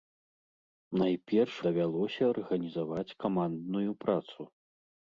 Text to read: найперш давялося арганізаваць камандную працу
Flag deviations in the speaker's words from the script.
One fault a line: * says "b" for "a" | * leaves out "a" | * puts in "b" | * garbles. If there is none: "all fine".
all fine